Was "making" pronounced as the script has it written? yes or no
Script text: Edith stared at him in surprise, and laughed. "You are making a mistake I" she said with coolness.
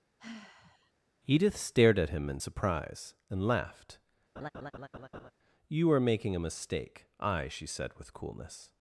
yes